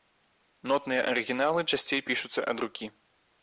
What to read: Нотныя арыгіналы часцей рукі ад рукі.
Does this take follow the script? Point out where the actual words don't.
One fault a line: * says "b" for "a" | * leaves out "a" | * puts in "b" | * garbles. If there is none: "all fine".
* says "пішуцца" for "рукі"